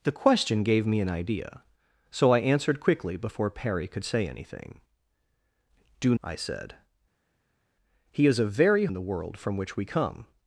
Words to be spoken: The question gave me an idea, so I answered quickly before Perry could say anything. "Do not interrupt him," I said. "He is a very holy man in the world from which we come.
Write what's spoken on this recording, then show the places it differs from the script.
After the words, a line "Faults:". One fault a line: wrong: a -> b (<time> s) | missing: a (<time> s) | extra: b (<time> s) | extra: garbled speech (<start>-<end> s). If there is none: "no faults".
The question gave me an idea, so I answered quickly before Perry could say anything. "Do," I said. "He is a very in the world from which we come.
Faults:
missing: not interrupt him (6.2 s)
missing: holy man (8.9 s)